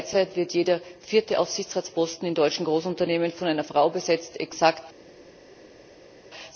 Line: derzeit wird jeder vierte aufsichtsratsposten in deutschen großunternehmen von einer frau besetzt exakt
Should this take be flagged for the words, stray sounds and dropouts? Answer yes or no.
no